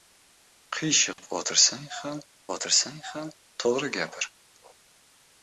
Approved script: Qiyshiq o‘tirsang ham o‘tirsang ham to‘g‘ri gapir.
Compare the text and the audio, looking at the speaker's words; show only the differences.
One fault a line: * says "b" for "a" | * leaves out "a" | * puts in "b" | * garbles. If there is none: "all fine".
all fine